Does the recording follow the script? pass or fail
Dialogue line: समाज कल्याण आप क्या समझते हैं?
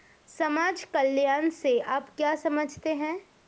fail